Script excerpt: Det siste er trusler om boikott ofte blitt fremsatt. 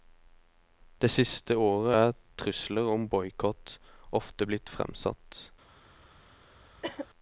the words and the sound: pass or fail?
fail